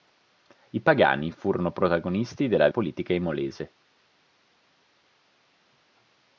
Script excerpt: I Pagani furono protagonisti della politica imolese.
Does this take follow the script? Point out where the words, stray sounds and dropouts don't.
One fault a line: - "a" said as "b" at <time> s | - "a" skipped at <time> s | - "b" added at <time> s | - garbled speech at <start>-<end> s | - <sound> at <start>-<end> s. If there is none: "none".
none